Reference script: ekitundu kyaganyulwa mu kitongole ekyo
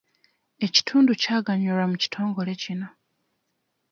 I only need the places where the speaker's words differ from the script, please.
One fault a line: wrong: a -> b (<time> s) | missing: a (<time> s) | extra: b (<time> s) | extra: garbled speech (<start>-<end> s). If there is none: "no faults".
wrong: ekyo -> kino (2.6 s)